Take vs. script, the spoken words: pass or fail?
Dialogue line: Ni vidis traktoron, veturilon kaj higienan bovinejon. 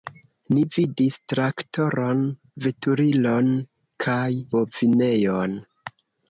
fail